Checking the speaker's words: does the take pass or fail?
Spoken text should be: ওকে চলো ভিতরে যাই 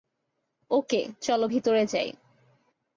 pass